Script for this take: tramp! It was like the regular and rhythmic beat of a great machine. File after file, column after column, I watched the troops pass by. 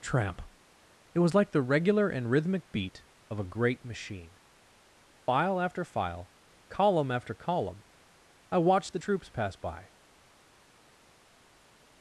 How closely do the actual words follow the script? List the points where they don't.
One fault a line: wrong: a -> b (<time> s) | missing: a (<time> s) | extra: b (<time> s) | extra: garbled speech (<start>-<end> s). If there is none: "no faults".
no faults